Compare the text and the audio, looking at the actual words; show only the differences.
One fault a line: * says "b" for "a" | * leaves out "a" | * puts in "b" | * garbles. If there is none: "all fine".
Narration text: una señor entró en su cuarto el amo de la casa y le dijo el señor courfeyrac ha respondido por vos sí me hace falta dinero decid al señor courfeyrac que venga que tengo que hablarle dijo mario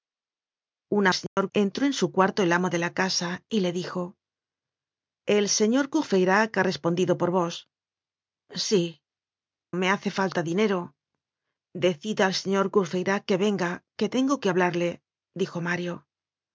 all fine